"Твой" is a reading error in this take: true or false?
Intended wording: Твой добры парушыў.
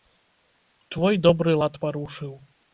false